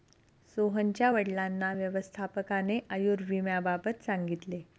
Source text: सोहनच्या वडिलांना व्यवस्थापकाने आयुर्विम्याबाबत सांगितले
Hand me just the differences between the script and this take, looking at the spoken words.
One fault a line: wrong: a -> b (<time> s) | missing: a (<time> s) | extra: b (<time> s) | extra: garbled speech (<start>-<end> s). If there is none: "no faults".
no faults